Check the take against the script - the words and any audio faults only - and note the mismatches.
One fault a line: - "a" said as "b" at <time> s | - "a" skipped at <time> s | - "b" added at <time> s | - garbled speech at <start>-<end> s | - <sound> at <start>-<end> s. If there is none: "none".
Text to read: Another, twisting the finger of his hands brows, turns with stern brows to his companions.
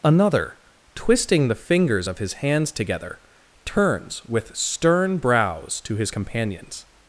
- "finger" said as "fingers" at 1.6 s
- "brows" said as "together" at 2.7 s